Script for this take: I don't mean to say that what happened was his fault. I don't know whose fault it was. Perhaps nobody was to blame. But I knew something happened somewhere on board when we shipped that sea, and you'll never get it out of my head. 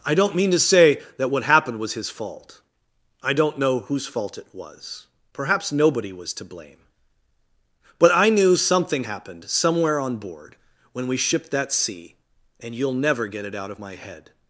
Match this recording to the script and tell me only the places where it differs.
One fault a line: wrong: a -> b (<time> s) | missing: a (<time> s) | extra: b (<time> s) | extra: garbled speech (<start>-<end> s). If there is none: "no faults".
no faults